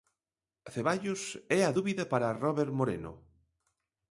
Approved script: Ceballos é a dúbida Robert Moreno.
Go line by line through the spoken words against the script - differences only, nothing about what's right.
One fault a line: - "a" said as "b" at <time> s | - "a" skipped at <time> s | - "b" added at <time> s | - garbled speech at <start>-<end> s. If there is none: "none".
- "para" added at 2.1 s